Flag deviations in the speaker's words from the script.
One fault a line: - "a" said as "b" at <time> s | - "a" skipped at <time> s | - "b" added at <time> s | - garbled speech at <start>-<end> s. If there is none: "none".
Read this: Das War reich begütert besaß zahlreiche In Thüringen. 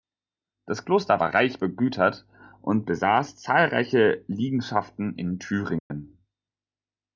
- "Kloster" added at 0.8 s
- "und" added at 2.6 s
- "Liegenschaften" added at 4.3 s